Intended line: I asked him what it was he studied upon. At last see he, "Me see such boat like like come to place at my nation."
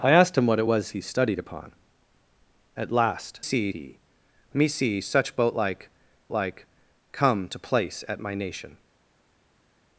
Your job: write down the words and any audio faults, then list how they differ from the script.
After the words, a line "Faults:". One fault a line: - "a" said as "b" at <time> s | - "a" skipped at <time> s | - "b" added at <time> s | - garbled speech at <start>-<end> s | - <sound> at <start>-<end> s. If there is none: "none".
I asked him what it was he studied upon. At last see he, "Me see such boat like like come to place at my nation."
Faults:
none